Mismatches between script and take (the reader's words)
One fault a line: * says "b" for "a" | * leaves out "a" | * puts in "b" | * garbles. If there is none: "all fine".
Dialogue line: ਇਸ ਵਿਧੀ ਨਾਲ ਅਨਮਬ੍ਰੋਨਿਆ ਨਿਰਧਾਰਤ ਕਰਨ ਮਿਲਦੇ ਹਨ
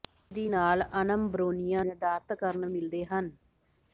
all fine